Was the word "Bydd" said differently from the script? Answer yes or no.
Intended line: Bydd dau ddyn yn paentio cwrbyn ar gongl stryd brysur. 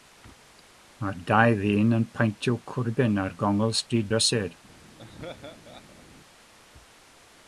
yes